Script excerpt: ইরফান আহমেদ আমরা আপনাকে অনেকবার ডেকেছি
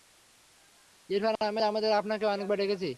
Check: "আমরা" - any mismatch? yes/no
no